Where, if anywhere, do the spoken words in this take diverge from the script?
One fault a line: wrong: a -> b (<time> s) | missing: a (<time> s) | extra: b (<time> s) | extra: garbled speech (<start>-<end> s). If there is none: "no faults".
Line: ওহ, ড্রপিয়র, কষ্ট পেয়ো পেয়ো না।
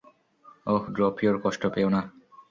missing: পেয়ো (1.9 s)